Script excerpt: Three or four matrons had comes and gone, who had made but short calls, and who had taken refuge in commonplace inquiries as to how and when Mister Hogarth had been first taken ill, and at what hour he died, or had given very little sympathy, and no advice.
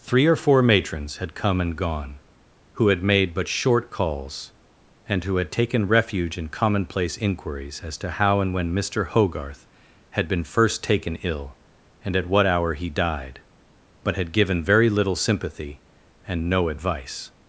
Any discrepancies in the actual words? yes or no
yes